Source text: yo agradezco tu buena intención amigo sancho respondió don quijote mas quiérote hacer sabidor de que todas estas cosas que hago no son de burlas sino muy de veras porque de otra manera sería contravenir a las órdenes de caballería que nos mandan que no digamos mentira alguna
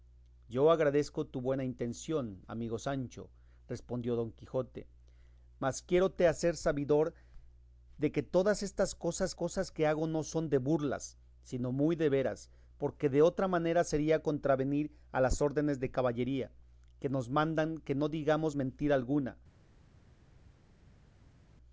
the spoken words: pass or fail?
fail